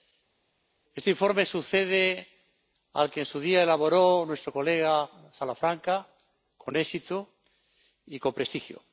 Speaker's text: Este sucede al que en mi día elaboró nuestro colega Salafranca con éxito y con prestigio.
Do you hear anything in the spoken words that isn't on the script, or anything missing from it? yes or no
yes